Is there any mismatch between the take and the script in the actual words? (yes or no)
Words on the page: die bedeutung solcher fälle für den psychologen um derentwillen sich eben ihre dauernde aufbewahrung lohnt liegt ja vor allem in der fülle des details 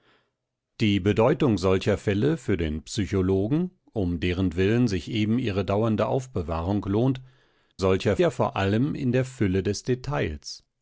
yes